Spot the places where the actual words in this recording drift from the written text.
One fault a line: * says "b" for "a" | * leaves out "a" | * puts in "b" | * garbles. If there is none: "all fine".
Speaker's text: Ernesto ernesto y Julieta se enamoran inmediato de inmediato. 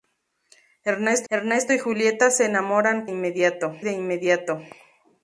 all fine